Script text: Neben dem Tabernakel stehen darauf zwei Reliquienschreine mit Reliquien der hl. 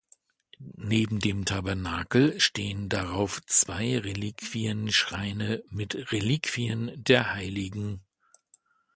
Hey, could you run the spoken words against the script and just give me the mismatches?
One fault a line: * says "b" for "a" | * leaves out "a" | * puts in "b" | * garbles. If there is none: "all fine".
all fine